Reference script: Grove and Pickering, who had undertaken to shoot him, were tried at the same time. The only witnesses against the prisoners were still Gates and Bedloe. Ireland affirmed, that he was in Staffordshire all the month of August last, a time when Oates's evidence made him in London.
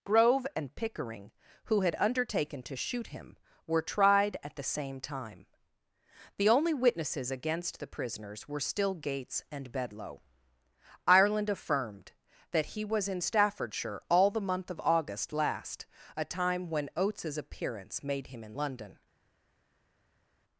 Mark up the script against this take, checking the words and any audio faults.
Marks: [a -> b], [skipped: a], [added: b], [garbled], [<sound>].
Grove and Pickering, who had undertaken to shoot him, were tried at the same time. The only witnesses against the prisoners were still Gates and Bedloe. Ireland affirmed, that he was in Staffordshire all the month of August last, a time when Oates's [evidence -> appearance] made him in London.